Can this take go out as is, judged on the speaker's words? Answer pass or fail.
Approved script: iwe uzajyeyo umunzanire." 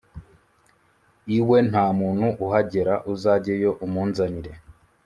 fail